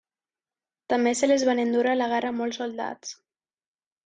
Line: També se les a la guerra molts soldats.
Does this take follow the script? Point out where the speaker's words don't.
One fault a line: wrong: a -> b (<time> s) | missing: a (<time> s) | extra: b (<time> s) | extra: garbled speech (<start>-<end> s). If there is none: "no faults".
extra: van endur (1.5 s)